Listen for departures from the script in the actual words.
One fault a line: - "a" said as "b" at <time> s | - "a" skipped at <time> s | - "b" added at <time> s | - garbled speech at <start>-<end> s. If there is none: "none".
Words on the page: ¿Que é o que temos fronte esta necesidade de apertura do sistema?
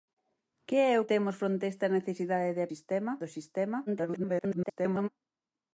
- "que" skipped at 1.1 s
- "apertura" said as "sistema" at 2.7 s
- garbled speech at 3.9-5.1 s